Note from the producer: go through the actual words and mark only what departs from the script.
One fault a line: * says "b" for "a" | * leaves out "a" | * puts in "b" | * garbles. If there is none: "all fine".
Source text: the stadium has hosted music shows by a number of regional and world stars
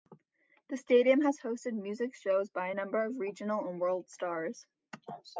all fine